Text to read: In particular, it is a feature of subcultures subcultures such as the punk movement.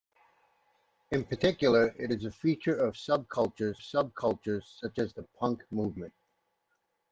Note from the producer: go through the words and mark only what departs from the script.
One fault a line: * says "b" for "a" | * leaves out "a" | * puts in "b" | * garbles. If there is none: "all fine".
all fine